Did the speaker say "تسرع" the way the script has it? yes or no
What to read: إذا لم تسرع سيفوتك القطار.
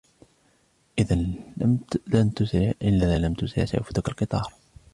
yes